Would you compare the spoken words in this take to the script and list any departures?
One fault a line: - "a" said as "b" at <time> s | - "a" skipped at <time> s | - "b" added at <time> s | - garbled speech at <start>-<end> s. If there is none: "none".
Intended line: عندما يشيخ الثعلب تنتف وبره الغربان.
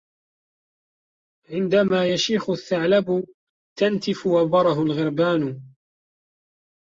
none